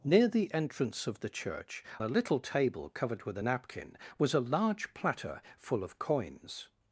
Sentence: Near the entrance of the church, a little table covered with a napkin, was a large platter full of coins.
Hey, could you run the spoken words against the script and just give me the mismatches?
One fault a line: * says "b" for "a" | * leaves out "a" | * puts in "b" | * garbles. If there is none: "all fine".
all fine